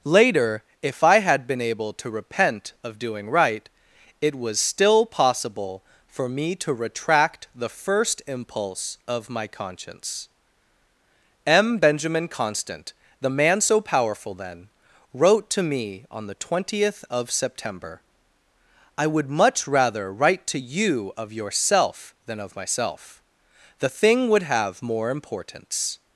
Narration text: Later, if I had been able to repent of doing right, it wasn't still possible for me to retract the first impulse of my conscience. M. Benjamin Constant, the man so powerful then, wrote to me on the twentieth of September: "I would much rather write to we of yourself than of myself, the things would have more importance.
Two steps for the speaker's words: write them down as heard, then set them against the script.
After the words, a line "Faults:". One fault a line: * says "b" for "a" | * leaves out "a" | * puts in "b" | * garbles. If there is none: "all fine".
Later, if I had been able to repent of doing right, it was still possible for me to retract the first impulse of my conscience. M. Benjamin Constant, the man so powerful then, wrote to me on the twentieth of September: "I would much rather write to you of yourself than of myself, the thing would have more importance.
Faults:
* says "was" for "wasn't"
* says "you" for "we"
* says "thing" for "things"